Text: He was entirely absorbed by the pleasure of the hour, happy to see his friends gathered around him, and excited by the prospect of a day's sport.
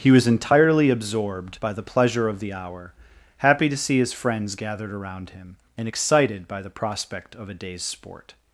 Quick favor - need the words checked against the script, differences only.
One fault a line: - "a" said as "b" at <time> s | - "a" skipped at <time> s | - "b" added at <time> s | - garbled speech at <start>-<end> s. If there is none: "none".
none